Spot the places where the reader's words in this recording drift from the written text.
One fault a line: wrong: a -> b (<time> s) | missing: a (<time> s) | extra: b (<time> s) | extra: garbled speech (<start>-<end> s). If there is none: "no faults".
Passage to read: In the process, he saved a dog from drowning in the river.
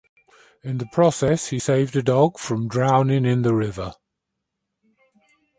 no faults